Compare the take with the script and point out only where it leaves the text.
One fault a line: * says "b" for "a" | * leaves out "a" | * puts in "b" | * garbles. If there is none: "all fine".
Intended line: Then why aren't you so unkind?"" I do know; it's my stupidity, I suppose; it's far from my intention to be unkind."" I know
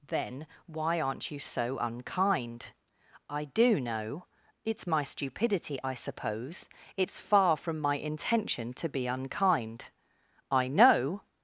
all fine